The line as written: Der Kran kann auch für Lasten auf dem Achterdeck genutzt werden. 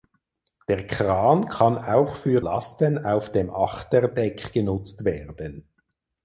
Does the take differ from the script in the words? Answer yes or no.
no